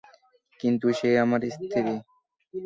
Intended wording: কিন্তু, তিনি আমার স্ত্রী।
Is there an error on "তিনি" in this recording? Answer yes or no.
yes